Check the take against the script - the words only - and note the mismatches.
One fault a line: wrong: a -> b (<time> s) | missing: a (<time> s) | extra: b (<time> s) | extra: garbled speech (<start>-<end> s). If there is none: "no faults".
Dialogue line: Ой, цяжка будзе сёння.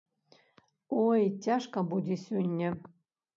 no faults